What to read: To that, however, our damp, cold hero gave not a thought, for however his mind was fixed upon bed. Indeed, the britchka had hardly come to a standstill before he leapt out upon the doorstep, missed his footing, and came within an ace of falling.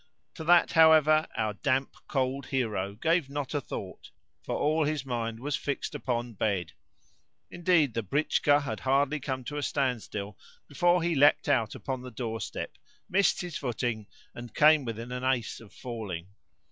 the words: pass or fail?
fail